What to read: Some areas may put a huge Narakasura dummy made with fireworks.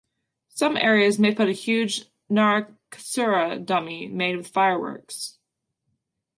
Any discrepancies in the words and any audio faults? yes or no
no